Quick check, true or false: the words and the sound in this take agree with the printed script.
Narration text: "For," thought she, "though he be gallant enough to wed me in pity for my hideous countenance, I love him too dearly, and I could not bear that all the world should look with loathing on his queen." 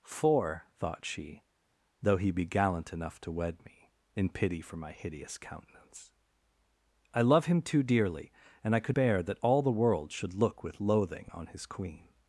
false